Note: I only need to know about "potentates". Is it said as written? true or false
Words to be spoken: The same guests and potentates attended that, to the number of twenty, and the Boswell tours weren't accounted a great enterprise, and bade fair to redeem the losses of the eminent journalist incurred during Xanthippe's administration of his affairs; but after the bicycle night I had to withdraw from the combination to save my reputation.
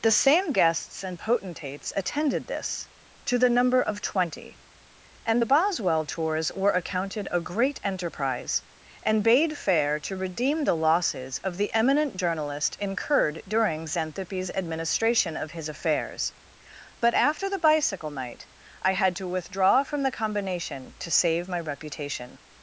true